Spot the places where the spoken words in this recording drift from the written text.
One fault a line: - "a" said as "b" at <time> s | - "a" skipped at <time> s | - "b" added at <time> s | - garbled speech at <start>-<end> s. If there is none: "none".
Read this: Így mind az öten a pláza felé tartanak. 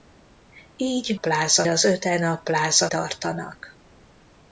- "mind" said as "pláza" at 1.1 s
- "felé" skipped at 2.9 s